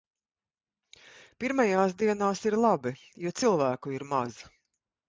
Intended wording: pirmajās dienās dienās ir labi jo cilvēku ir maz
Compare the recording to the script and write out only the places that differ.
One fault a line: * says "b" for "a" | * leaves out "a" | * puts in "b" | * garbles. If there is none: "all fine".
* leaves out "dienās"